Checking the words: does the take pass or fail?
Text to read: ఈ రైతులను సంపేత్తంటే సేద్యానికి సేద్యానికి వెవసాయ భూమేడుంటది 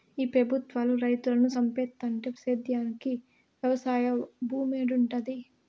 fail